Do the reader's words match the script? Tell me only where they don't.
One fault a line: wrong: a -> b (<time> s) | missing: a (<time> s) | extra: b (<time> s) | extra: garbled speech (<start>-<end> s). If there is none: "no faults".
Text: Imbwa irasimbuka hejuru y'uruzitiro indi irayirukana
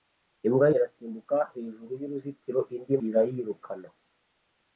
no faults